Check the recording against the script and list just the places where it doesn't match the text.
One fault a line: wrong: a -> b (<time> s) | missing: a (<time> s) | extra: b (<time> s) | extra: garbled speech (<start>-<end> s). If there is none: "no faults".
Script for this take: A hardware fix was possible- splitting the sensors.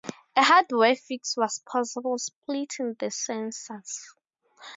no faults